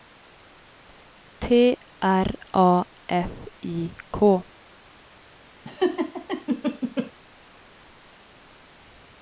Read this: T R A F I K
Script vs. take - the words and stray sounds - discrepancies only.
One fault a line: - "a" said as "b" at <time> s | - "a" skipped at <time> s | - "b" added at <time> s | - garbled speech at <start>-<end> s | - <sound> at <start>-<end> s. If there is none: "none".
- laugh at 5.6-7.1 s